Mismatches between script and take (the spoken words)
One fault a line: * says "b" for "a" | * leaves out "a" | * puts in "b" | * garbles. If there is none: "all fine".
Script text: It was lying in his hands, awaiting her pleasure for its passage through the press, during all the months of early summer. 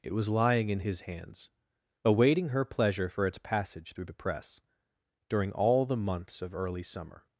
all fine